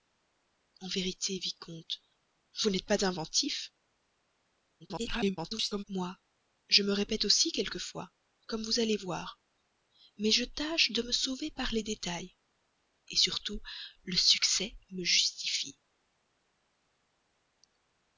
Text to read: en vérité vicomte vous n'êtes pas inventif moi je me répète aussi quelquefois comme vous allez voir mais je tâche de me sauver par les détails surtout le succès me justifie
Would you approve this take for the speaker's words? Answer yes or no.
no